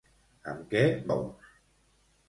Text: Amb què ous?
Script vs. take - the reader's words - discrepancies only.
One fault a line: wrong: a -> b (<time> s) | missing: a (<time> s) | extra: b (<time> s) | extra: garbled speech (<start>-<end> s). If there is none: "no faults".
no faults